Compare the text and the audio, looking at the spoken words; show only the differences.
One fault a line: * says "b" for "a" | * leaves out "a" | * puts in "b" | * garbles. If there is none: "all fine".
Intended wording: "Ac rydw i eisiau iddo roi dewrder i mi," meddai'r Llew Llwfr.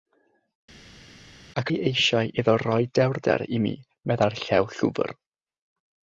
* leaves out "rydw"